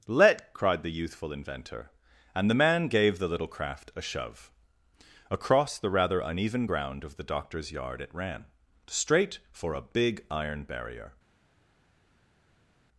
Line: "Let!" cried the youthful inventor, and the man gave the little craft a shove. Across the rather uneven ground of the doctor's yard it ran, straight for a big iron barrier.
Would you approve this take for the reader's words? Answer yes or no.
yes